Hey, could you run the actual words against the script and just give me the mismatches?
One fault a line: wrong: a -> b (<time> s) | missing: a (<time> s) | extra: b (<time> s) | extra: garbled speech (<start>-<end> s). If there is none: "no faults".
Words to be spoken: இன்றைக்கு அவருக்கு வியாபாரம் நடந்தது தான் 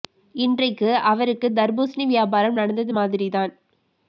extra: தர்பூசணி (1.5 s)
extra: மாதிரி (2.9 s)